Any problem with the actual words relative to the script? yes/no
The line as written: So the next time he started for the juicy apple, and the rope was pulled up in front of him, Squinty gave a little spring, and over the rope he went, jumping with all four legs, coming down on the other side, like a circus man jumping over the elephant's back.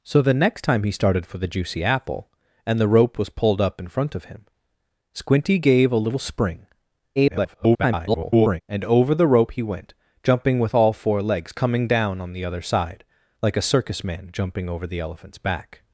yes